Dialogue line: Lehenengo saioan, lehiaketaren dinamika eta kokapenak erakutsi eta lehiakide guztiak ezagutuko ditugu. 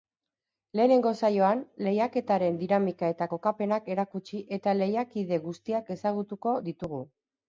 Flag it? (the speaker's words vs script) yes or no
no